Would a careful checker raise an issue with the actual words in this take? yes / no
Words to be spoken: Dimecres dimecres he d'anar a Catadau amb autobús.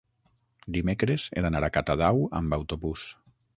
yes